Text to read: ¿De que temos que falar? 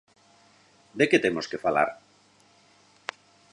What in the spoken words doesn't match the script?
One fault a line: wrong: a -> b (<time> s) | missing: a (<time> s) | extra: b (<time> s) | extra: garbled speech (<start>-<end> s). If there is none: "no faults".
no faults